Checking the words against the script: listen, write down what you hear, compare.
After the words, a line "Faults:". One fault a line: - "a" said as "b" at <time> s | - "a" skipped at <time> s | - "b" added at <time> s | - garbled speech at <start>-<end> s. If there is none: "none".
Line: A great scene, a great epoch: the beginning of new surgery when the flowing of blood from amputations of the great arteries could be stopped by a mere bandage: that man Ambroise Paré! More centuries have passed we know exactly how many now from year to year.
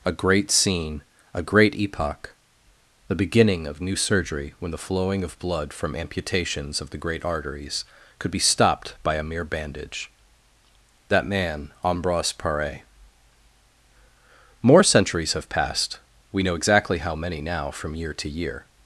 A great scene, a great epoch: the beginning of new surgery when the flowing of blood from amputations of the great arteries could be stopped by a mere bandage: that man Ambroise Paré! More centuries have passed we know exactly how many now from year to year.
Faults:
none